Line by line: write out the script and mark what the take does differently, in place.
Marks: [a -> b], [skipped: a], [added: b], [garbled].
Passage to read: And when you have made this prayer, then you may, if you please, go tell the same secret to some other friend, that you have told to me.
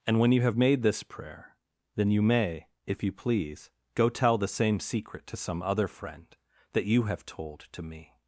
And when you have made this prayer, then you may, if you please, go tell the same secret to some other friend, that you have told to me.